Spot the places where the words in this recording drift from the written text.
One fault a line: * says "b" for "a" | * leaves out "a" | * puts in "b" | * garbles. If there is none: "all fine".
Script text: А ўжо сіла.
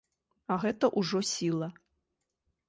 * puts in "гэта"